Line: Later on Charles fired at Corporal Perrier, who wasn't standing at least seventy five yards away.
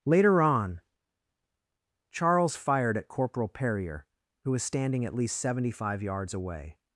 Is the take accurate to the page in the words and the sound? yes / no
no